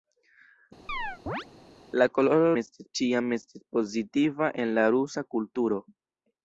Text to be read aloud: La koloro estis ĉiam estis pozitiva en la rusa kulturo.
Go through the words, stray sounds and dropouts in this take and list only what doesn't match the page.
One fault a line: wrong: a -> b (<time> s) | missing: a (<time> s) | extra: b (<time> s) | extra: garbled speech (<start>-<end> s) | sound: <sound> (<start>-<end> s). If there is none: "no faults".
sound: chirp (0.9-1.5 s)